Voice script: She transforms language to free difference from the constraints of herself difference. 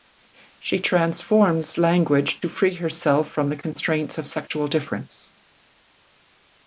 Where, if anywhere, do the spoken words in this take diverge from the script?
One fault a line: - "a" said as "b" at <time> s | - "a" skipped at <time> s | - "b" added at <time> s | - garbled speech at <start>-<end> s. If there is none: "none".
- "difference" said as "herself" at 2.7 s
- "herself" said as "sexual" at 4.3 s